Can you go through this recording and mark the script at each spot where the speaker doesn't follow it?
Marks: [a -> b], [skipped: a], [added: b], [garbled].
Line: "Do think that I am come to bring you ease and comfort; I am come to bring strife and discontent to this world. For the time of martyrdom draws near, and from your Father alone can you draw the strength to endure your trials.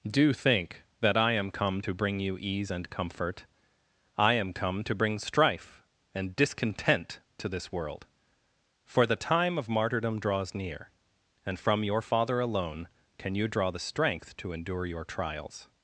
"Do think that I am come to bring you ease and comfort; I am come to bring strife and discontent to this world. For the time of martyrdom draws near, and from your Father alone can you draw the strength to endure your trials.